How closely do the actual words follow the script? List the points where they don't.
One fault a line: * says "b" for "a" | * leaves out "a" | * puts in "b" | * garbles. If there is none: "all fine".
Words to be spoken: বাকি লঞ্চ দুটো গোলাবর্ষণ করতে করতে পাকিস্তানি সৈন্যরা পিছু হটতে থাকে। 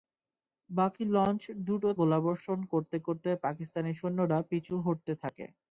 all fine